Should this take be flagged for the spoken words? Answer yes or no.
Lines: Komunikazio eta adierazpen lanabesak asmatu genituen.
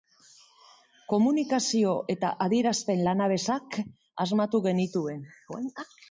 no